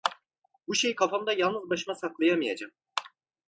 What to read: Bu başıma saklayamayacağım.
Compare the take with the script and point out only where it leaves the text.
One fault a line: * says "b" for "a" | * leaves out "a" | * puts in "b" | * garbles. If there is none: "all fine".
* puts in "şeyi kafamda yalnız"